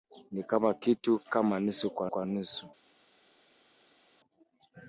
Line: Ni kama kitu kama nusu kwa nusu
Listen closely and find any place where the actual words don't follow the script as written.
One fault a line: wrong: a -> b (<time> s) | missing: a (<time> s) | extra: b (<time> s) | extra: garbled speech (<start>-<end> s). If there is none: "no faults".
extra: kwa (2.1 s)